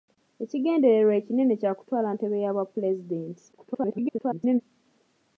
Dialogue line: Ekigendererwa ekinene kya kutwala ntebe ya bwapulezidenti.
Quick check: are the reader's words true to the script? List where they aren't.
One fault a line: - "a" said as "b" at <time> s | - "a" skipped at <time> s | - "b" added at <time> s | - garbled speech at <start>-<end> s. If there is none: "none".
- garbled speech at 3.5-4.6 s